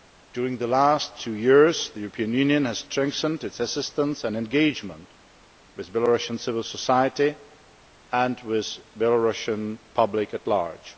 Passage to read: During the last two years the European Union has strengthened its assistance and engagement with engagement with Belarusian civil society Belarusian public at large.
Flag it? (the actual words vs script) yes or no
yes